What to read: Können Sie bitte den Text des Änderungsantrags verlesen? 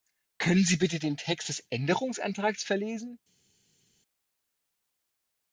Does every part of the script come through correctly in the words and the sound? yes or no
yes